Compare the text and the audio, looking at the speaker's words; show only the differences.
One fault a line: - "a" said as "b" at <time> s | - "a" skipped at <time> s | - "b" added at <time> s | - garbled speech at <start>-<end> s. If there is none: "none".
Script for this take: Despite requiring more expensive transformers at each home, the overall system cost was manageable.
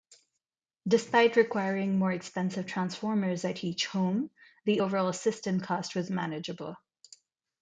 none